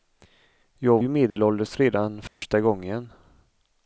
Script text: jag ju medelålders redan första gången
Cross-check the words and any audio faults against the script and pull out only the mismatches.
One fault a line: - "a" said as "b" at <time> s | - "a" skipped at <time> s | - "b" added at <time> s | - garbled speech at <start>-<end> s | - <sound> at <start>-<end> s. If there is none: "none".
- dropout at 1.3-1.4 s
- dropout at 2.3-2.4 s